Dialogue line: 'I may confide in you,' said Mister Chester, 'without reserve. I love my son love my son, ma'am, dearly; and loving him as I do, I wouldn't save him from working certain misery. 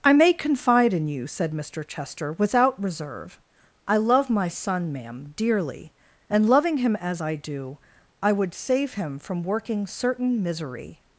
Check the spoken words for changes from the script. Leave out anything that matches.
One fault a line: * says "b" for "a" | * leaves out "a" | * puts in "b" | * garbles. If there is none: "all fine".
* leaves out "love my son"
* says "would" for "wouldn't"